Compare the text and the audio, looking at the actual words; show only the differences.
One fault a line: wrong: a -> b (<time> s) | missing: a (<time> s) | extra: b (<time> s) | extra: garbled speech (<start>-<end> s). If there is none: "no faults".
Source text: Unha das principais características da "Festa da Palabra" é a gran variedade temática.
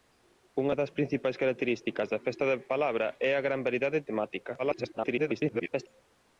extra: garbled speech (4.6-5.9 s)